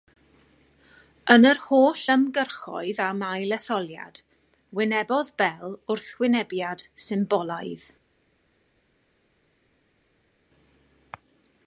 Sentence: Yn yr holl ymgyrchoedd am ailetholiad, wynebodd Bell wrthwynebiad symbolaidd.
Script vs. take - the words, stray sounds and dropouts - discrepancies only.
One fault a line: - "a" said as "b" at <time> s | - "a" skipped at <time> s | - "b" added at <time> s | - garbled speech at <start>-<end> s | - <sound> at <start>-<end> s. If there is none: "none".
none